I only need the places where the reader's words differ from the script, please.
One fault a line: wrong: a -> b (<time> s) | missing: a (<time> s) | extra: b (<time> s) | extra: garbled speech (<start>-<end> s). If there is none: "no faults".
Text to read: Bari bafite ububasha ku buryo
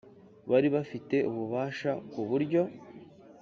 no faults